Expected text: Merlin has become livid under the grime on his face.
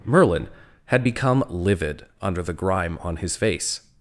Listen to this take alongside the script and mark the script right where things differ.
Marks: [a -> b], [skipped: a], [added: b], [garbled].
Merlin [has -> had] become livid under the grime on his face.